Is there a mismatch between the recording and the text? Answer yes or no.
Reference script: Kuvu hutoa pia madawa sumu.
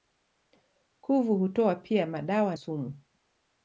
no